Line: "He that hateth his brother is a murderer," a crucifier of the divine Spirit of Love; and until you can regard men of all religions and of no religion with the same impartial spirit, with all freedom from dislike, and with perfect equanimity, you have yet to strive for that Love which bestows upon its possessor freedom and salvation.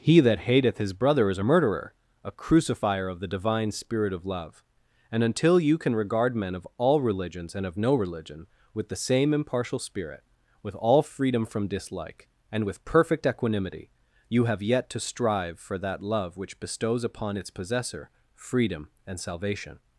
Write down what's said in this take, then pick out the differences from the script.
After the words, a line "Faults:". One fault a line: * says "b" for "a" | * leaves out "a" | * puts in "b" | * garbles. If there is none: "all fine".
"He that hateth his brother is a murderer," a crucifier of the divine Spirit of Love; and until you can regard men of all religions and of no religion with the same impartial spirit, with all freedom from dislike, and with perfect equanimity, you have yet to strive for that Love which bestows upon its possessor freedom and salvation.
Faults:
all fine